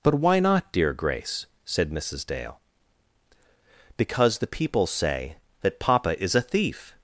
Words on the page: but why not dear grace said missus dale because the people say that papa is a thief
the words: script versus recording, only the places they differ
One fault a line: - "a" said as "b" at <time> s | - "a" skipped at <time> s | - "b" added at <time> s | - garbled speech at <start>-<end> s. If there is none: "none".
none